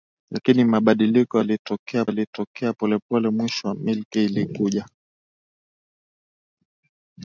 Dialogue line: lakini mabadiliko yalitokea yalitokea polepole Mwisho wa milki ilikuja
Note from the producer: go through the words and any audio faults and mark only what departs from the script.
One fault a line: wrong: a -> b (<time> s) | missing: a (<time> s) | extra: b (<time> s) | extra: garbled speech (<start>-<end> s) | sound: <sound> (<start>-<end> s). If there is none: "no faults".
no faults